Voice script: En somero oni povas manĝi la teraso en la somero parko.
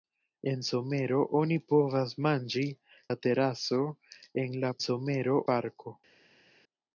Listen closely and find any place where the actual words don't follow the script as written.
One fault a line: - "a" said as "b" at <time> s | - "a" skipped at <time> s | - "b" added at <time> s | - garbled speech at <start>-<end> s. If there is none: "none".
none